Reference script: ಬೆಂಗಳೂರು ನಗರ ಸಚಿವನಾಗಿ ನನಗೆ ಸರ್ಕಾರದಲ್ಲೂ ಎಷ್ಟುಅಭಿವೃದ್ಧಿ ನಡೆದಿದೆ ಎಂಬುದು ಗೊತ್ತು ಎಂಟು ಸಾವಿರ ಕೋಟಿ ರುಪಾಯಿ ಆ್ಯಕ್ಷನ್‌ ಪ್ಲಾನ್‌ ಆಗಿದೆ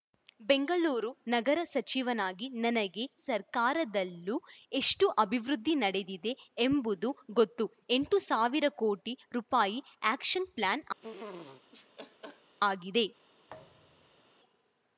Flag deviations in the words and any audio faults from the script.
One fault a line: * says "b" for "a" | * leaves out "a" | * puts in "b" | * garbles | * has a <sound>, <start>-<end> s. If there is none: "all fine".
* has a laugh, 11.0-12.6 s
* has a thud, 13.5-14.3 s